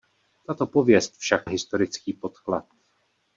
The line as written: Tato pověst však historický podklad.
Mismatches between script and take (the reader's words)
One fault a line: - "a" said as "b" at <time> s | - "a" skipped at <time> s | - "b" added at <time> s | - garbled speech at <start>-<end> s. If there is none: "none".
none